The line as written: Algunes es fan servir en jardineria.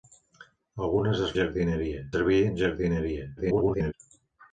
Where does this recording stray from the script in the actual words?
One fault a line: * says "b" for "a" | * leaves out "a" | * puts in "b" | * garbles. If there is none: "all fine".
* says "jardineria" for "fan"
* garbles